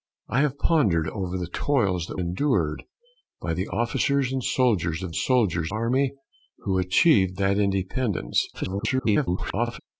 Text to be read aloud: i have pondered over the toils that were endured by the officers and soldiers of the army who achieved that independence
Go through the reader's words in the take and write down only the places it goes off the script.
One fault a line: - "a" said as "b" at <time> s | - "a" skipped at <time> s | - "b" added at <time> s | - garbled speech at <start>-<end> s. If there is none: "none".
- "were" skipped at 2.2 s
- "the" said as "soldiers" at 5.1 s
- garbled speech at 8.5-9.8 s